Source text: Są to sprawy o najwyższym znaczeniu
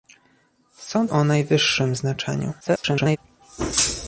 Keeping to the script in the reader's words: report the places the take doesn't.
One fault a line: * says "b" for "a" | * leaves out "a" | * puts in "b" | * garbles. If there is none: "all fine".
* leaves out "to sprawy"
* garbles